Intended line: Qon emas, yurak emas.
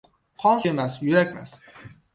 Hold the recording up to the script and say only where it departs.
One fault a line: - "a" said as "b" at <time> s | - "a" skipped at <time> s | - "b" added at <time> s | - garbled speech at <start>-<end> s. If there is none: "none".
none